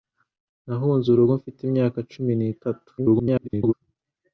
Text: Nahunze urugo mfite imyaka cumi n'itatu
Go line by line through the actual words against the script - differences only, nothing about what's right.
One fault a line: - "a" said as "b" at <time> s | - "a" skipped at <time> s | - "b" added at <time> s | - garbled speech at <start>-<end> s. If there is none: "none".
- garbled speech at 3.0-3.7 s